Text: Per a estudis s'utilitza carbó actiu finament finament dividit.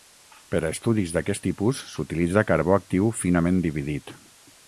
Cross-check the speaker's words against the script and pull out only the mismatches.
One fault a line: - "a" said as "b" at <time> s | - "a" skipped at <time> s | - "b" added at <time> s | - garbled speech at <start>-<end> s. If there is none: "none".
- "d'aquest tipus" added at 1.2 s
- "finament" skipped at 3.6 s